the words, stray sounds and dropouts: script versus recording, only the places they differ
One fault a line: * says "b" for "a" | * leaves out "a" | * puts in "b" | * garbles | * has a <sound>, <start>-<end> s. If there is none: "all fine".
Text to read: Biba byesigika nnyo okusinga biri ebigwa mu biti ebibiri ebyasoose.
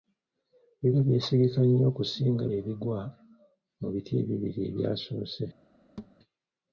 * leaves out "biri"
* has a thud, 6.0-6.2 s